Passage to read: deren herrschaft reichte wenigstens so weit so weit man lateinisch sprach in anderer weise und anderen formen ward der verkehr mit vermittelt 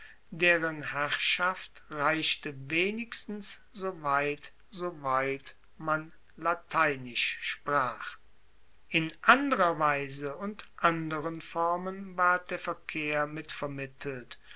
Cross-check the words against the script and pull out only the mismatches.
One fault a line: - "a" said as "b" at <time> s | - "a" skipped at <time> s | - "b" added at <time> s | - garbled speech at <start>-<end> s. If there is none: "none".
none